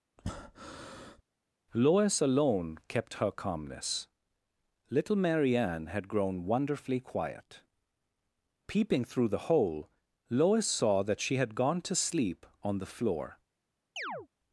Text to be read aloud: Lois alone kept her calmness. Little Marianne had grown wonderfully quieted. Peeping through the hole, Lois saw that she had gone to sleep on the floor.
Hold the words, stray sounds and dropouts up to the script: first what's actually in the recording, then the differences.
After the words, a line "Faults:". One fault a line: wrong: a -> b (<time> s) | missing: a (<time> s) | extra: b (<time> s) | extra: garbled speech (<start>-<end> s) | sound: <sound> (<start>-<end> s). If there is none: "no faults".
Lois alone kept her calmness. Little Marianne had grown wonderfully quiet. Peeping through the hole, Lois saw that she had gone to sleep on the floor.
Faults:
sound: breath (0.2-1.2 s)
wrong: quieted -> quiet (7.0 s)
sound: chirp (14.0-14.3 s)